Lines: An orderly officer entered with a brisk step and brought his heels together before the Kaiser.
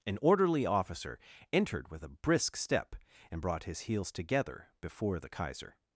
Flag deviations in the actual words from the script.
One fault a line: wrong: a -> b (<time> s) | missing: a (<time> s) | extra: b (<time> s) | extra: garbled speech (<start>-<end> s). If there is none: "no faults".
no faults